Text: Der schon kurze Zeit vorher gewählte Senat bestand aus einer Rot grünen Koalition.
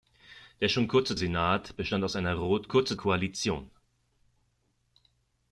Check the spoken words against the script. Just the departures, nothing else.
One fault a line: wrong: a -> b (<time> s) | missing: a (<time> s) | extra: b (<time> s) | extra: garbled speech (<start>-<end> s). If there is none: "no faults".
missing: Zeit vorher gewählte (1.2 s)
wrong: grünen -> kurze (2.7 s)